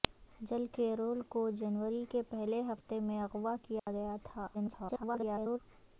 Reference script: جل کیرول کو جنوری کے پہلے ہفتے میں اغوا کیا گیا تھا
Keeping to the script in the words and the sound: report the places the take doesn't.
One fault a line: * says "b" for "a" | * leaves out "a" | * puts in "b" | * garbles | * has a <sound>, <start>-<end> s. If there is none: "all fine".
* has a dropout, 3.8-3.9 s
* garbles